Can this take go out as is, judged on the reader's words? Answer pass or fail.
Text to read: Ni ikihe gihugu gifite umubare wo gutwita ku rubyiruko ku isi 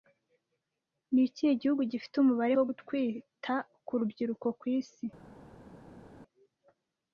pass